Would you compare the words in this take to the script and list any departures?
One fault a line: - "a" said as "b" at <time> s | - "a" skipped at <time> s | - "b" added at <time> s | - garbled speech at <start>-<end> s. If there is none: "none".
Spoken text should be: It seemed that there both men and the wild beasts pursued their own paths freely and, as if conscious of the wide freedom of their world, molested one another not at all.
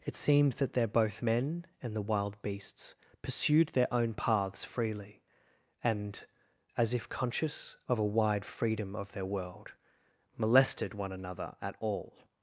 - "the" said as "a" at 8.0 s
- "not" skipped at 11.6 s